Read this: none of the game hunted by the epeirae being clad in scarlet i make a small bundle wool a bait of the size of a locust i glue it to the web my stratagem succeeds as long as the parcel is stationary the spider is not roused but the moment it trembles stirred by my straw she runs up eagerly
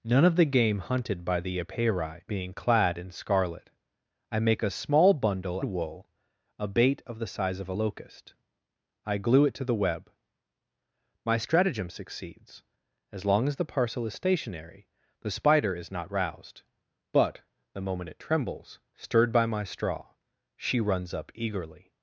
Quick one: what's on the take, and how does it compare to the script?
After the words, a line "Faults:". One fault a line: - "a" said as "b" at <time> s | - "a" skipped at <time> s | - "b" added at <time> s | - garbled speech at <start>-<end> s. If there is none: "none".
none of the game hunted by the epeirae being clad in scarlet i make a small bundle wool a bait of the size of a locust i glue it to the web my stratagem succeeds as long as the parcel is stationary the spider is not roused but the moment it trembles stirred by my straw she runs up eagerly
Faults:
none